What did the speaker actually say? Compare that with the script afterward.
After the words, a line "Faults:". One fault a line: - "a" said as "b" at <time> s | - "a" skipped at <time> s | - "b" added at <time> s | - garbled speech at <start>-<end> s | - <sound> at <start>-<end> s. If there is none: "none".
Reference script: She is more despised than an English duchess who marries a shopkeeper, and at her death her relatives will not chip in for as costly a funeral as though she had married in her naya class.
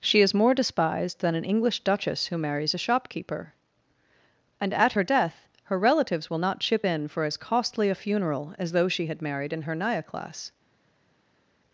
She is more despised than an English duchess who marries a shopkeeper, and at her death her relatives will not chip in for as costly a funeral as though she had married in her naya class.
Faults:
none